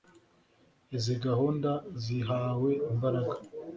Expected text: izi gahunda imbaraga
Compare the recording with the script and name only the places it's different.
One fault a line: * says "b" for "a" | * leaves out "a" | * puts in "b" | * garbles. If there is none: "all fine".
* puts in "zihawe"